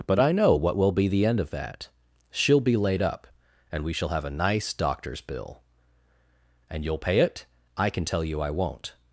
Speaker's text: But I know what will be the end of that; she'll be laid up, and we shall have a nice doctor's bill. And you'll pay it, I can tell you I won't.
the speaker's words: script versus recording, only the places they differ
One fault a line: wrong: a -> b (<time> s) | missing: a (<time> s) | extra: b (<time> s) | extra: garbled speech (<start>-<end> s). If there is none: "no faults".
no faults